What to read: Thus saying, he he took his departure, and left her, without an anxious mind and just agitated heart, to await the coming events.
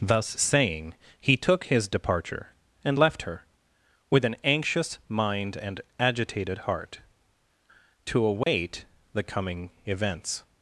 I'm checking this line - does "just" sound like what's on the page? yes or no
no